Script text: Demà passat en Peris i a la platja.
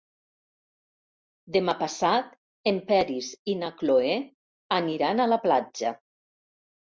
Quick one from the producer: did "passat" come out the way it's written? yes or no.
yes